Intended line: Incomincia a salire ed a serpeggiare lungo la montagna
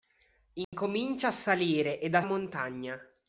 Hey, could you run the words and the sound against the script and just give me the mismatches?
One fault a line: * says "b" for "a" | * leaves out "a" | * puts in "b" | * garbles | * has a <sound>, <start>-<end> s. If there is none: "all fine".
* has a dropout, 0.6-0.7 s
* leaves out "serpeggiare lungo la"